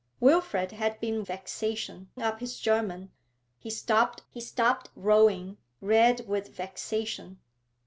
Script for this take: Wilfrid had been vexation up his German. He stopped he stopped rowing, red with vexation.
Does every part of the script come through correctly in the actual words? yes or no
yes